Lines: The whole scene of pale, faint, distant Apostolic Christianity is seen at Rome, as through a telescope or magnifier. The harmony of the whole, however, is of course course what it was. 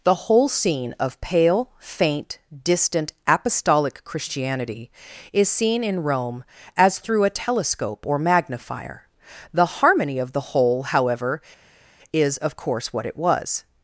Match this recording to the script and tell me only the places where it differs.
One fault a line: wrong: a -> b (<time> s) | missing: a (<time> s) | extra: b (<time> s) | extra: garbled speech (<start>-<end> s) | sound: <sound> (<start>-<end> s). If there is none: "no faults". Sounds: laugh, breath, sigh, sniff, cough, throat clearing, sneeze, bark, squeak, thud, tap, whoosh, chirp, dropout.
wrong: at -> in (5.8 s)
missing: course (12.9 s)